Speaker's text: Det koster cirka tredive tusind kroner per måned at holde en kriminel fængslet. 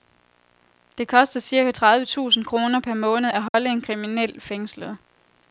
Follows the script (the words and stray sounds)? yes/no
no